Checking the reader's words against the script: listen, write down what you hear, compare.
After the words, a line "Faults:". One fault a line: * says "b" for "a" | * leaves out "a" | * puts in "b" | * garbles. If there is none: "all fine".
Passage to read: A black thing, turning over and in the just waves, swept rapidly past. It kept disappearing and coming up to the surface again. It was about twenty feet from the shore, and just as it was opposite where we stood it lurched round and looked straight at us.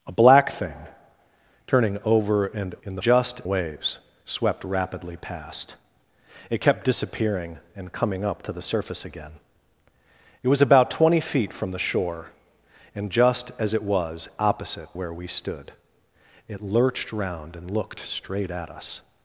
A black thing, turning over and in the just waves, swept rapidly past. It kept disappearing and coming up to the surface again. It was about twenty feet from the shore, and just as it was opposite where we stood it lurched round and looked straight at us.
Faults:
all fine